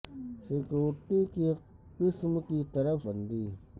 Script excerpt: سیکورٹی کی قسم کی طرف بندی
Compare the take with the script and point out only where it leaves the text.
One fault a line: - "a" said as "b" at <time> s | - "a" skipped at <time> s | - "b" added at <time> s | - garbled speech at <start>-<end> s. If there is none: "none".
none